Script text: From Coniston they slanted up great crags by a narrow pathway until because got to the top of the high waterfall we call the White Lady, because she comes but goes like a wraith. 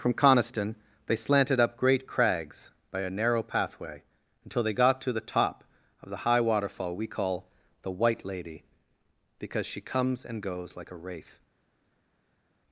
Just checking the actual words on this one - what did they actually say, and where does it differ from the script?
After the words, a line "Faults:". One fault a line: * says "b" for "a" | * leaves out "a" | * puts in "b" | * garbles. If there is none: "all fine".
From Coniston they slanted up great crags by a narrow pathway until they got to the top of the high waterfall we call the White Lady, because she comes and goes like a wraith.
Faults:
* says "they" for "because"
* says "and" for "but"